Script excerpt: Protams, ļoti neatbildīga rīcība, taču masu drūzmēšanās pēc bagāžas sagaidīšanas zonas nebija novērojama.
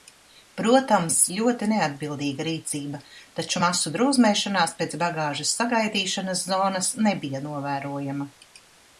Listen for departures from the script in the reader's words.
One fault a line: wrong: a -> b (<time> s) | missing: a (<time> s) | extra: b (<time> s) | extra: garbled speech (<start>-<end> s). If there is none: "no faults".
no faults